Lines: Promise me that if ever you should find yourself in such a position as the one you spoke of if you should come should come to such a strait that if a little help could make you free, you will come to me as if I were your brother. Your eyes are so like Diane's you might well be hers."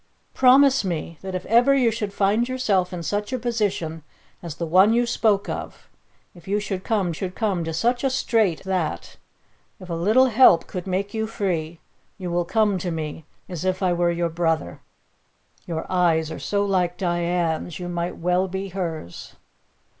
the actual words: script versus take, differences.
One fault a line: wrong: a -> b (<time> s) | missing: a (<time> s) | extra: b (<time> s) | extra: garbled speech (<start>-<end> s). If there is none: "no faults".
no faults